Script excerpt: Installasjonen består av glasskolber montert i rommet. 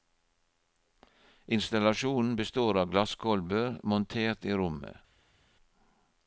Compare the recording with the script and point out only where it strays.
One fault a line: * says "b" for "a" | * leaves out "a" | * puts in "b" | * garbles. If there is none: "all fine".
all fine